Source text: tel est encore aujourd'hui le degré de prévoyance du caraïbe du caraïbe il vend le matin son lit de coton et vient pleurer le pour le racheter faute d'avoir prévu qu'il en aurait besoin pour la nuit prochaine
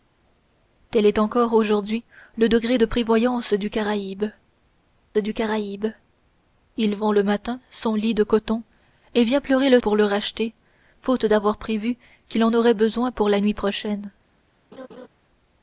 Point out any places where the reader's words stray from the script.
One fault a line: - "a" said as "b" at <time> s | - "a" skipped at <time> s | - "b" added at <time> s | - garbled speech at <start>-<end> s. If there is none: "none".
none